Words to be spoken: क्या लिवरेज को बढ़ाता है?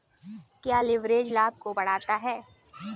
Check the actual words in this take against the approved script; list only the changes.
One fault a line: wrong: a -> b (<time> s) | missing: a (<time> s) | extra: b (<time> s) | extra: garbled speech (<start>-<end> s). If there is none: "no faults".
extra: लाभ (1.3 s)